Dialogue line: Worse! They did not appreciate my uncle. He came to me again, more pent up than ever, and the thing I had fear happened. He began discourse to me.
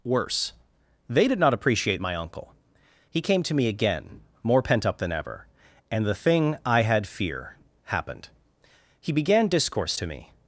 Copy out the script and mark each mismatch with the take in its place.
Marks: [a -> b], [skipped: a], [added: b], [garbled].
Worse! They did not appreciate my uncle. He came to me again, more pent up than ever, and the thing I had fear happened. He began discourse to me.